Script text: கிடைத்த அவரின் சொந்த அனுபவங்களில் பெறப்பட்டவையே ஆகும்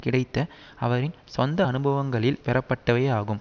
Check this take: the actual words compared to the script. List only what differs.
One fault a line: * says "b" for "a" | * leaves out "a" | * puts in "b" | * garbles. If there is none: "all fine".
all fine